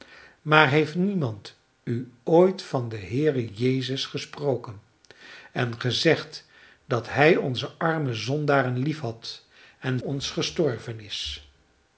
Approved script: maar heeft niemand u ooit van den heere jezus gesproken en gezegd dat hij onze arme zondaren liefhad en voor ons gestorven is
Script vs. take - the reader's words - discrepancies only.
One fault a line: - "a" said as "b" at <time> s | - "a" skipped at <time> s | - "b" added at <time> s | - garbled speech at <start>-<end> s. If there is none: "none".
- "voor" skipped at 10.0 s